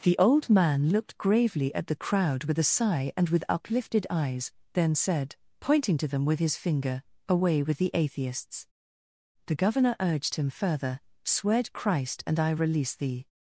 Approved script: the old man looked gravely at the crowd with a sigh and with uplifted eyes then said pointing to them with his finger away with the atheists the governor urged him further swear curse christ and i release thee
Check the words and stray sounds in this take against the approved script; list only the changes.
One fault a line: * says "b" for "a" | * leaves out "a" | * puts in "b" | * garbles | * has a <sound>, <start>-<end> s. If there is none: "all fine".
* leaves out "curse"